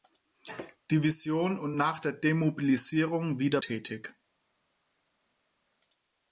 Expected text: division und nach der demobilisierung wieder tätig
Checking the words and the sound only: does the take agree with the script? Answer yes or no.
yes